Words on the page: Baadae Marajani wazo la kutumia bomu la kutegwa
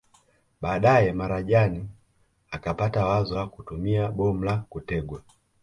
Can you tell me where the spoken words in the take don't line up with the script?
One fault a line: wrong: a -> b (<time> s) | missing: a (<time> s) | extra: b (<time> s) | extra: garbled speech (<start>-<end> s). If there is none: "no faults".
extra: akapata (2.5 s)